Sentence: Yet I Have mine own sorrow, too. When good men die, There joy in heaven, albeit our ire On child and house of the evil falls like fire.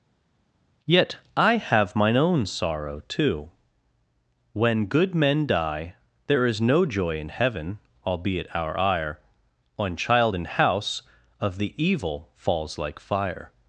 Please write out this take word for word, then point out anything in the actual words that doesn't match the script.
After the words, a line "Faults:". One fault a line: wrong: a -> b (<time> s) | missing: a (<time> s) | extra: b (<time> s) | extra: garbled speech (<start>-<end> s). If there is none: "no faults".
Yet I Have mine own sorrow, too. When good men die, There is no joy in heaven, albeit our ire On child and house of the evil falls like fire.
Faults:
extra: is no (6.5 s)